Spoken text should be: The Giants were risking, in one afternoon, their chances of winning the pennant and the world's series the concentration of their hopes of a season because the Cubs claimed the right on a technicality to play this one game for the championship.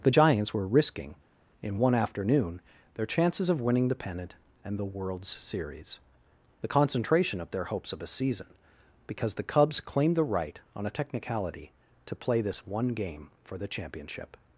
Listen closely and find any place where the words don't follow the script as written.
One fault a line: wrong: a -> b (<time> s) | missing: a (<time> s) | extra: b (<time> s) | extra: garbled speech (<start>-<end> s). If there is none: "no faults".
no faults